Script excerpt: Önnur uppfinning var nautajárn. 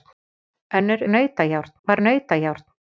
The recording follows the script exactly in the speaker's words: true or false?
false